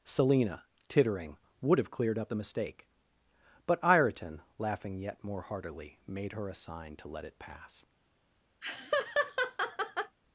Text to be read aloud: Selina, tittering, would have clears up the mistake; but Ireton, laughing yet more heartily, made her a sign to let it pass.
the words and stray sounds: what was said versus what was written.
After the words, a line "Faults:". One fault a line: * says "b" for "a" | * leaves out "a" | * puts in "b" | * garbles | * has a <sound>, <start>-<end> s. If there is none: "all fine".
Selina, tittering, would have cleared up the mistake; but Ireton, laughing yet more heartily, made her a sign to let it pass.
Faults:
* says "cleared" for "clears"
* has a laugh, 8.6-10.2 s